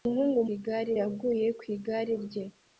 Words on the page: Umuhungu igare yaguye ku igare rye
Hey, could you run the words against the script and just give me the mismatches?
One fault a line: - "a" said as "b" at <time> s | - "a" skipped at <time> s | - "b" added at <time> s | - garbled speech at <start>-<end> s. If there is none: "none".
none